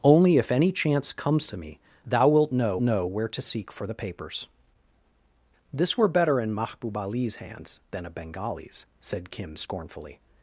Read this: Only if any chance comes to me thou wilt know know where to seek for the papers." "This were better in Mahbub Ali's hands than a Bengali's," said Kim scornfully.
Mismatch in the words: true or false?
false